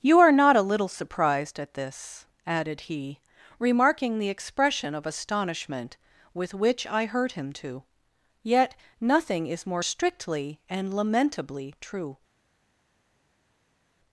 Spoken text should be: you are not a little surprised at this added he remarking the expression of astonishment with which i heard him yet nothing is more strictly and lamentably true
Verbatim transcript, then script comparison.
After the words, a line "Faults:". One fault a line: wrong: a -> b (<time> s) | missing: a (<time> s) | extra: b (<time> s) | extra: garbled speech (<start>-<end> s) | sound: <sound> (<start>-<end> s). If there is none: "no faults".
you are not a little surprised at this added he remarking the expression of astonishment with which i heard him to yet nothing is more strictly and lamentably true
Faults:
extra: to (7.5 s)